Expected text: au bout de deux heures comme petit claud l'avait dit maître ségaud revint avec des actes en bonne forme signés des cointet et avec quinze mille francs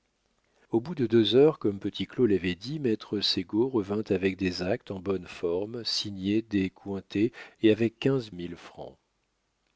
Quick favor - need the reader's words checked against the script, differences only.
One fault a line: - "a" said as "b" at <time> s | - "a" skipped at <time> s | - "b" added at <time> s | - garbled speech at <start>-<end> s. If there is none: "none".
none